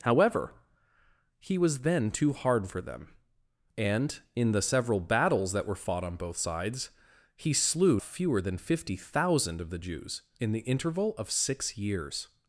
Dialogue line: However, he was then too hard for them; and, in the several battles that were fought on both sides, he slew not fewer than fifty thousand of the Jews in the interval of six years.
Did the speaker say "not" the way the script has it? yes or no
no